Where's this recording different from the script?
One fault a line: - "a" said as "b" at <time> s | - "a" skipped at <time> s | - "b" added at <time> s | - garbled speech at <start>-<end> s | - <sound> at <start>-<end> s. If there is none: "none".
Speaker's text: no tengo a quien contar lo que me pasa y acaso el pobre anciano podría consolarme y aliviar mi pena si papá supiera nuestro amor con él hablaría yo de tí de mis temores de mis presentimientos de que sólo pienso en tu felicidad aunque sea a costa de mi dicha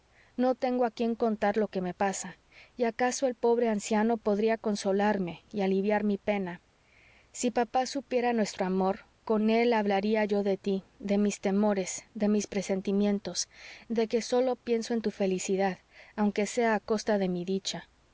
none